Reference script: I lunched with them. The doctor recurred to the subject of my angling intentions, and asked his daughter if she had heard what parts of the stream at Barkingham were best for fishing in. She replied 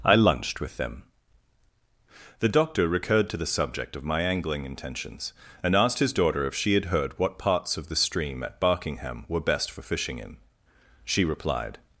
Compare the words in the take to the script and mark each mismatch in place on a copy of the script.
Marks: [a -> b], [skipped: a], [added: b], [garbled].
I lunched with them. The doctor recurred to the subject of my angling intentions, and asked his daughter if she had heard what parts of the stream at Barkingham were best for fishing in. She replied